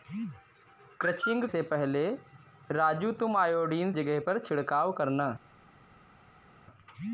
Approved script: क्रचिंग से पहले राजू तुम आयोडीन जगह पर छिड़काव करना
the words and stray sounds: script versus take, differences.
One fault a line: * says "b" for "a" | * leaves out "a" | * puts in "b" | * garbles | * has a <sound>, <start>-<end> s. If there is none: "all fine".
all fine